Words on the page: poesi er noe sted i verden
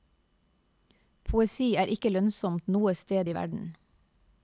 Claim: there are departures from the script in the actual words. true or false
true